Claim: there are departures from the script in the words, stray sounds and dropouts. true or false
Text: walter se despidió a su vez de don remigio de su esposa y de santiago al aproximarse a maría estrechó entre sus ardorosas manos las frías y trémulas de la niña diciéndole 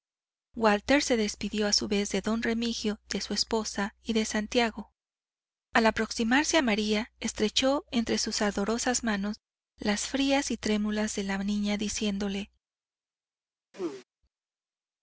true